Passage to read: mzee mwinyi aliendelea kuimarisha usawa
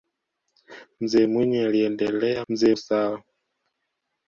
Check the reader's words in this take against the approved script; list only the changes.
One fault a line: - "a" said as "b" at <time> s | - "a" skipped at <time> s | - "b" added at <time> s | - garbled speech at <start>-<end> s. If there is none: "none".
- "kuimarisha" said as "mzee" at 2.5 s